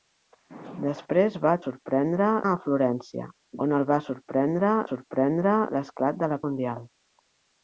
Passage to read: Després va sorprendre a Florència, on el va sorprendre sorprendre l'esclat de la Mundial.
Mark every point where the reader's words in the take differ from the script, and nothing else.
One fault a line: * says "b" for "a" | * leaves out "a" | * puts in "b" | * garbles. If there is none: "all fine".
all fine